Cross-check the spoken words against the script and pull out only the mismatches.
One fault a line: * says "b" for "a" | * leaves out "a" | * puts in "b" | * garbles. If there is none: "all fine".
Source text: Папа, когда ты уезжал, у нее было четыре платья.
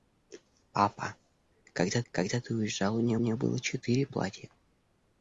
* puts in "когда"
* puts in "нее"